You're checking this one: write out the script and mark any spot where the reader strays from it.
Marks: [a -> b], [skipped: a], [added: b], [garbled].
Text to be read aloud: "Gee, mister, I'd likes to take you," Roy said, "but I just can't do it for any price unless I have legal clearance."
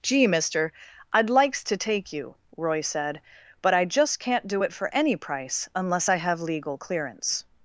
"Gee, mister, I'd likes to take you," Roy said, "but I just can't do it for any price unless I have legal clearance."